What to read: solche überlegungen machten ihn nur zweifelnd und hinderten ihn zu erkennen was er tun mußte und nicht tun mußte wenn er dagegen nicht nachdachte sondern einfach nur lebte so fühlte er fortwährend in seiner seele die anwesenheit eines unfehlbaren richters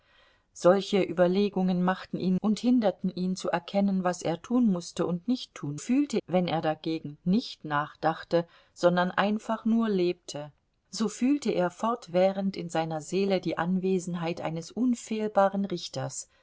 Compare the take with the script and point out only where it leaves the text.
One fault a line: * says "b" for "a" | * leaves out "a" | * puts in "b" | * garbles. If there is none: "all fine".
* leaves out "nur zweifelnd"
* says "fühlte" for "mußte"